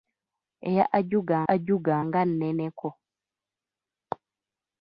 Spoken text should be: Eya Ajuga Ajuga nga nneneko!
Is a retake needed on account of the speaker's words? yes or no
no